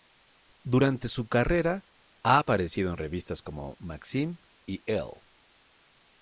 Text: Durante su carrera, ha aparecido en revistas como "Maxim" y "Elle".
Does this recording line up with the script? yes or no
yes